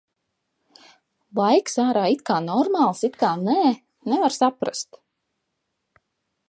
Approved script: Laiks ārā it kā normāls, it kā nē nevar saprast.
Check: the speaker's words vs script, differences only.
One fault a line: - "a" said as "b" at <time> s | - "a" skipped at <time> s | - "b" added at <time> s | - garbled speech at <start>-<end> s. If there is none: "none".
none